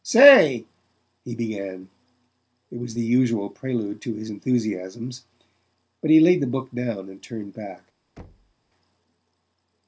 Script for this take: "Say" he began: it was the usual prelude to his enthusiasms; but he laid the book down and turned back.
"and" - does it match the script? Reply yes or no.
yes